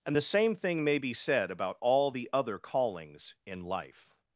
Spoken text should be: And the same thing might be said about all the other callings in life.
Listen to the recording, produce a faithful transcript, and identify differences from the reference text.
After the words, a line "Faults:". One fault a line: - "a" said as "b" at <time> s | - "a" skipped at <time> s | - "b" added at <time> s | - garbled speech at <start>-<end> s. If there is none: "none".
And the same thing may be said about all the other callings in life.
Faults:
- "might" said as "may" at 0.8 s